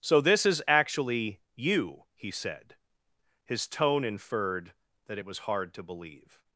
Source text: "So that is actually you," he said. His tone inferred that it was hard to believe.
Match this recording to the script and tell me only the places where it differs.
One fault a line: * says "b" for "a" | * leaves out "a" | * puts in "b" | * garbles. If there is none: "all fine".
* says "this" for "that"